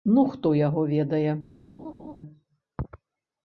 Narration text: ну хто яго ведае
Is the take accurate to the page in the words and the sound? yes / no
no